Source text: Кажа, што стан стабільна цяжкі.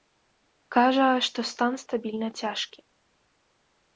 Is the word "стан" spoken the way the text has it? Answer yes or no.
yes